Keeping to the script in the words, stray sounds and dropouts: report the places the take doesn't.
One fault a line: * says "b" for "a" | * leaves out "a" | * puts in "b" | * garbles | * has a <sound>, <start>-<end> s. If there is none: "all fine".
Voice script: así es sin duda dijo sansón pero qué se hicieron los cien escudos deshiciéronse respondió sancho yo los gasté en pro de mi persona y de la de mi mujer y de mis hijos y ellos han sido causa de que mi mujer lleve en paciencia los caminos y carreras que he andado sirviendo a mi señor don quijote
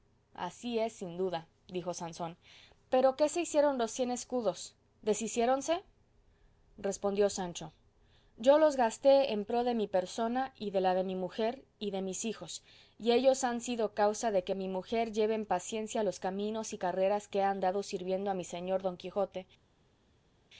all fine